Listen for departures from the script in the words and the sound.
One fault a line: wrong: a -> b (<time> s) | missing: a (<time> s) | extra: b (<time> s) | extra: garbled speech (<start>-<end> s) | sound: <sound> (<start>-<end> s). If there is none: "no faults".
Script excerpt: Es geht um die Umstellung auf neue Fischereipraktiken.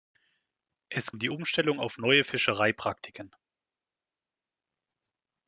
missing: geht (1.1 s)